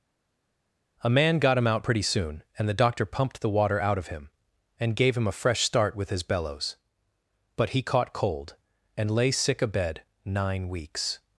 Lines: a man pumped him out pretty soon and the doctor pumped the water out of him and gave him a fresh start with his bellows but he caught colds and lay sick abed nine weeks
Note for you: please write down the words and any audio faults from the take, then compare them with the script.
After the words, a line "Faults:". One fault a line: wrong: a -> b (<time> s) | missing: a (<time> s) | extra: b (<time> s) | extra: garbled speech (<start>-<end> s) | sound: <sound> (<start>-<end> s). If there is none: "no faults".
a man got him out pretty soon and the doctor pumped the water out of him and gave him a fresh start with his bellows but he caught cold and lay sick abed nine weeks
Faults:
wrong: pumped -> got (1.4 s)
wrong: colds -> cold (8.1 s)